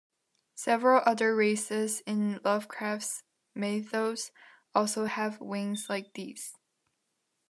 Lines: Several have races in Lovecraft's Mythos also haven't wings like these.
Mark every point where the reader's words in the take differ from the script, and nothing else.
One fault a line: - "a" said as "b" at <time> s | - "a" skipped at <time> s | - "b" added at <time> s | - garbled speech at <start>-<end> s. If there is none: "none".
- "have" said as "other" at 1.1 s
- "haven't" said as "have" at 5.0 s